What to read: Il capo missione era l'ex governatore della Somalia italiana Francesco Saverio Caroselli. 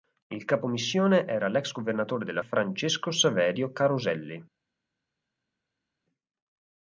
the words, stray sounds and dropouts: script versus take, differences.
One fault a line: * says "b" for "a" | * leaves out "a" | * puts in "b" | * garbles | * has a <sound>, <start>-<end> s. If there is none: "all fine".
* leaves out "Somalia italiana"